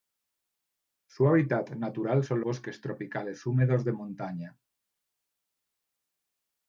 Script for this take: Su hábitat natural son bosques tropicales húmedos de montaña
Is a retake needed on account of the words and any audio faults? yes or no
no